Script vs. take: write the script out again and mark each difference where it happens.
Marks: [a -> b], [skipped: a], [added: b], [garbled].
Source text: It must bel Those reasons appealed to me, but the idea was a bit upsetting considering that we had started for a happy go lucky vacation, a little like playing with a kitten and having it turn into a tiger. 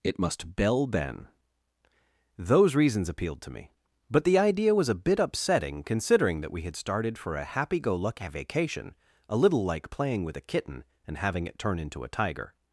It must [bel -> bell ben] Those reasons appealed to me, but the idea was a bit upsetting considering that we had started for a happy go lucky vacation, a little like playing with a kitten and having it turn into a tiger.